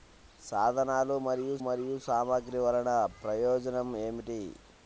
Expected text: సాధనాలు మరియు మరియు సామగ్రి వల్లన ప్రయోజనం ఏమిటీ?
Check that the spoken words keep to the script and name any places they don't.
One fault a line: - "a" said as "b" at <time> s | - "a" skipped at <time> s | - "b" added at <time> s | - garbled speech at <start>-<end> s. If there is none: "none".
none